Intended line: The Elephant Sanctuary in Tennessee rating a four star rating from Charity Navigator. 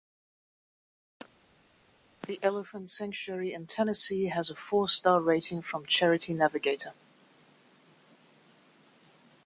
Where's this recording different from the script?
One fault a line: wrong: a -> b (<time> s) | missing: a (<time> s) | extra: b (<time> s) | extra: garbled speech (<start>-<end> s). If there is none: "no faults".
wrong: rating -> has (4.3 s)